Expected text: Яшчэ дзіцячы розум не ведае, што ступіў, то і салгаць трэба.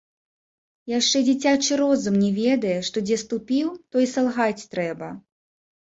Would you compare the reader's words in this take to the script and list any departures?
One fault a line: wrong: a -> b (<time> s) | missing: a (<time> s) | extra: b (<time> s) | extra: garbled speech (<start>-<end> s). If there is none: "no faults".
extra: дзе (3.1 s)